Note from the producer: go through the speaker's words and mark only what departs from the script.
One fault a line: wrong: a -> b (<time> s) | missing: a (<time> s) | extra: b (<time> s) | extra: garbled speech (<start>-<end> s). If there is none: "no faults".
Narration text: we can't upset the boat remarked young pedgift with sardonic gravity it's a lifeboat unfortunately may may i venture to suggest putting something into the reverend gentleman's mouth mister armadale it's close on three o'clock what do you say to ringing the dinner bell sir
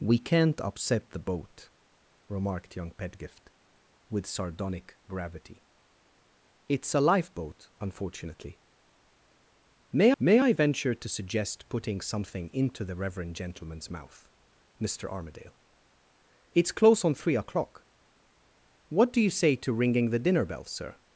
no faults